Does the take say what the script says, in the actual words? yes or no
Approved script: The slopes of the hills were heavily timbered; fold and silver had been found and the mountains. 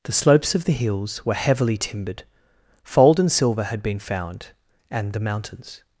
yes